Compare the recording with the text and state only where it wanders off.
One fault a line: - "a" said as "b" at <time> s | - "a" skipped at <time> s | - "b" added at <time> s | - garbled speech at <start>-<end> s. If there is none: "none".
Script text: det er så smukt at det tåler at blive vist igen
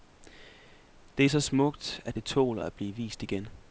none